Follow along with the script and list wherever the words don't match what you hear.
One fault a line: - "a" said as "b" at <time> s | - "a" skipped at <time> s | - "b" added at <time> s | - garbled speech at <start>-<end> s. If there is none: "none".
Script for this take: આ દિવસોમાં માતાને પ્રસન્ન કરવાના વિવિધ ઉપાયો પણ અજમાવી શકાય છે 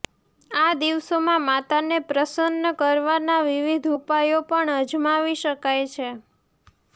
none